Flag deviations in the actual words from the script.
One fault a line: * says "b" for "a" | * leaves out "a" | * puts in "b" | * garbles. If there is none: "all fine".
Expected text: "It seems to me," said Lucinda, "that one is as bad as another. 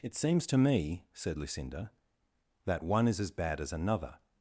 all fine